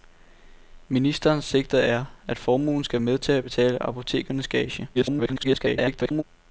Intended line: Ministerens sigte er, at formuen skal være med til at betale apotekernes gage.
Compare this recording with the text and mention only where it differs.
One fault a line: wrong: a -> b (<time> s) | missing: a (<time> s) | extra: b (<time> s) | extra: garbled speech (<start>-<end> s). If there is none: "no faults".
missing: være (3.0 s)
extra: garbled speech (4.9-6.2 s)